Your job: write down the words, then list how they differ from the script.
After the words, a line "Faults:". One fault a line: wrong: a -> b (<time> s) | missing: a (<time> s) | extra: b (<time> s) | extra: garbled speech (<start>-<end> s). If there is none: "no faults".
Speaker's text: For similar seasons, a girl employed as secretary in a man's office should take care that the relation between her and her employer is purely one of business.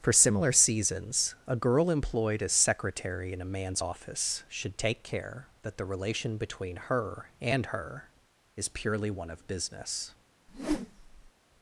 For similar seasons, a girl employed as secretary in a man's office should take care that the relation between her and her is purely one of business.
Faults:
missing: employer (8.1 s)